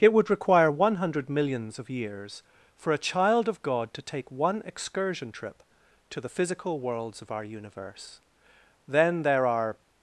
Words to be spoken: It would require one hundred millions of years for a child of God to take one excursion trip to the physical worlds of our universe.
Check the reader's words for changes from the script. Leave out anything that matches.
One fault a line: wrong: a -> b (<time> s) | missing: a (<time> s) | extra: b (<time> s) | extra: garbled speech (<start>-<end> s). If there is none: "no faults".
extra: Then there are (8.9 s)